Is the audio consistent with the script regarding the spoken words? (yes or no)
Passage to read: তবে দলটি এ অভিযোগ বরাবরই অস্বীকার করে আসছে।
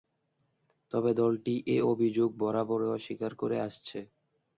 yes